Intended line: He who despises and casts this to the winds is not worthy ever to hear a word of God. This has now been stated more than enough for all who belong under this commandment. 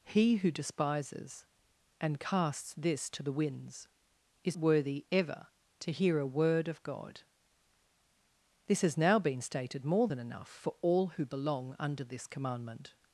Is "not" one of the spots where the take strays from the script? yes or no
yes